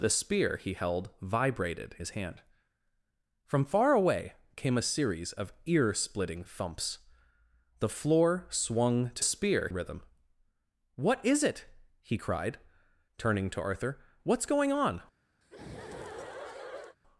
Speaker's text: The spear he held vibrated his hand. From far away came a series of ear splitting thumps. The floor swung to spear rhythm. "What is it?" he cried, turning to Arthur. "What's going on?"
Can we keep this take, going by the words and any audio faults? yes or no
no